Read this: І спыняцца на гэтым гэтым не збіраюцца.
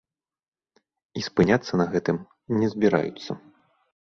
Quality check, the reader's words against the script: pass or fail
fail